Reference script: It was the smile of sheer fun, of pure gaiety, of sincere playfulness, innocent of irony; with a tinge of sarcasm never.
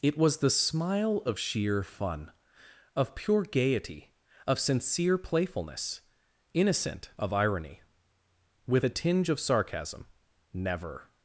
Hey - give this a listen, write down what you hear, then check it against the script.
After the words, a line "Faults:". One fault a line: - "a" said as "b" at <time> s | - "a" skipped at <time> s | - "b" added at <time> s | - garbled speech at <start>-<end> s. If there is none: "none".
It was the smile of sheer fun, of pure gaiety, of sincere playfulness, innocent of irony; with a tinge of sarcasm never.
Faults:
none